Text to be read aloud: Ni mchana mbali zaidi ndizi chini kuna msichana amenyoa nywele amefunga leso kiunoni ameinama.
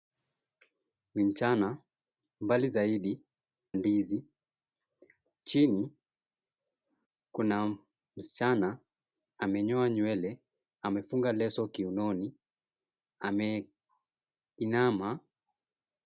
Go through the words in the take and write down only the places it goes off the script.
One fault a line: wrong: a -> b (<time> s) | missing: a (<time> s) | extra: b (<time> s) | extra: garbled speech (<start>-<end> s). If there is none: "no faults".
no faults